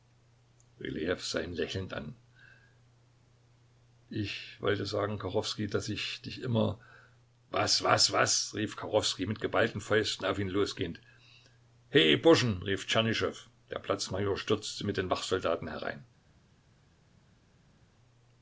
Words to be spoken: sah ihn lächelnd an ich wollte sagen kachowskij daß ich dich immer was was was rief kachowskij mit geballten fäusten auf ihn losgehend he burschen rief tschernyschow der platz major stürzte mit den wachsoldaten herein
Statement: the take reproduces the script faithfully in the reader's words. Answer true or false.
true